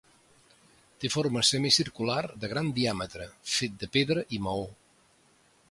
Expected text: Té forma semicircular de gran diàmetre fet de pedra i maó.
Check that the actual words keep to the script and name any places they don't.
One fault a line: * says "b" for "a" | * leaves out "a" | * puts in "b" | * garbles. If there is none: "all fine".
all fine